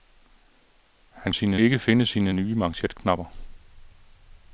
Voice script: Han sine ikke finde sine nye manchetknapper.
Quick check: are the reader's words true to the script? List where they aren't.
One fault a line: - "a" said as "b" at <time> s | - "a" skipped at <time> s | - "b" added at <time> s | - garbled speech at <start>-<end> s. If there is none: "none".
none